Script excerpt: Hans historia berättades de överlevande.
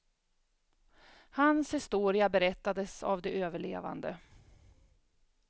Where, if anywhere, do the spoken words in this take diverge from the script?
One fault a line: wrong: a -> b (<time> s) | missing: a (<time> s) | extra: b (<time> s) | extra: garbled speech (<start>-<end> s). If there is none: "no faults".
extra: av (3.0 s)